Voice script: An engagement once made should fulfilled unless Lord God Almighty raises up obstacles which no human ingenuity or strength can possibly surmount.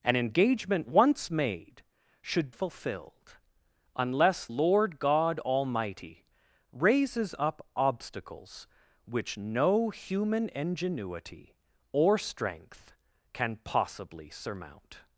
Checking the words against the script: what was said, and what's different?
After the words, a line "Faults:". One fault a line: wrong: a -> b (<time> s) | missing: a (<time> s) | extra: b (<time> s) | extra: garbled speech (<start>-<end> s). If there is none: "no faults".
An engagement once made should fulfilled unless Lord God Almighty raises up obstacles which no human ingenuity or strength can possibly surmount.
Faults:
no faults